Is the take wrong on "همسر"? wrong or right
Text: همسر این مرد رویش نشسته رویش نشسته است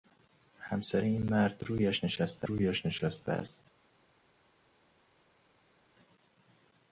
right